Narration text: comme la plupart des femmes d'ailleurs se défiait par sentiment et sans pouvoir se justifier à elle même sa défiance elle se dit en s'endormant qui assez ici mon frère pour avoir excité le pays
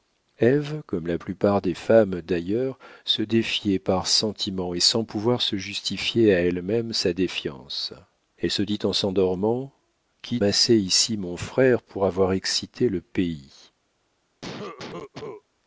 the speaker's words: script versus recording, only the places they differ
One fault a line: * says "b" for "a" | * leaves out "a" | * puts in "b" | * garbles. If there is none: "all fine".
all fine